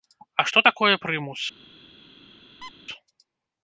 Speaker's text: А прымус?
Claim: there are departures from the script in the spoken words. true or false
true